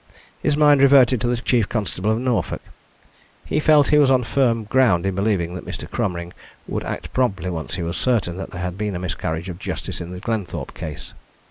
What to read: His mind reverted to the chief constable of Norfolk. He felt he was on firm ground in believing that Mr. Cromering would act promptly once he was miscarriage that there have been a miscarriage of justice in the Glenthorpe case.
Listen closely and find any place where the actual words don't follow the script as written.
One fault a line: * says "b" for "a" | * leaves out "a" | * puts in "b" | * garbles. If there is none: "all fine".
* says "certain" for "miscarriage"
* says "had" for "have"